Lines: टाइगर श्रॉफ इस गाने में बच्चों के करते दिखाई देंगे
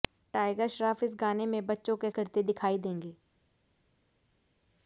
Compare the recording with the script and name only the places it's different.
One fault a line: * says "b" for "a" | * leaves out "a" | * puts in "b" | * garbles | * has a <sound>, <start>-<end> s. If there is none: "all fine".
all fine